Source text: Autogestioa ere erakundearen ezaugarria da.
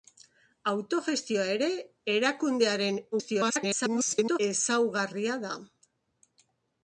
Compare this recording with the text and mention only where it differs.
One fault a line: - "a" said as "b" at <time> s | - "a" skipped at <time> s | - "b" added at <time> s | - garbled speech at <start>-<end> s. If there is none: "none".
- garbled speech at 3.1-4.4 s